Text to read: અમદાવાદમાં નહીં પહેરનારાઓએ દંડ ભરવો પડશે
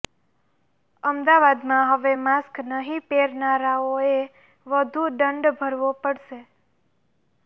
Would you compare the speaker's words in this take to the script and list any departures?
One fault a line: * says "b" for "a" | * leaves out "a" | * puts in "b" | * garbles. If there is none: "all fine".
* puts in "હવે માસ્ક"
* puts in "વધુ"